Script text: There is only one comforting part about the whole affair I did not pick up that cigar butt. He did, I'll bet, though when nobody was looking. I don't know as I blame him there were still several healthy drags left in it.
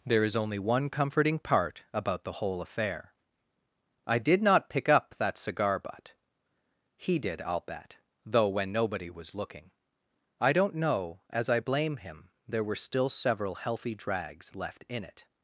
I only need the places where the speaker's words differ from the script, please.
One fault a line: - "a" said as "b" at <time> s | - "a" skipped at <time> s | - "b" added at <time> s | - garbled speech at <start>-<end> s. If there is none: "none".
none